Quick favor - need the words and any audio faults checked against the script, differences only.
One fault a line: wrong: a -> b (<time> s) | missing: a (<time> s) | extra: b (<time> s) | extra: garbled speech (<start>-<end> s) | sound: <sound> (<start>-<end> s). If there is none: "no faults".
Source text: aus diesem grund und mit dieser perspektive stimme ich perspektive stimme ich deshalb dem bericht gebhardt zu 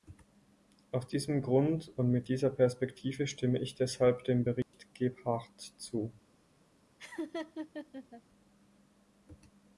missing: perspektive stimme ich (3.7 s)
sound: dropout (4.6-4.7 s)
sound: laugh (7.0-8.2 s)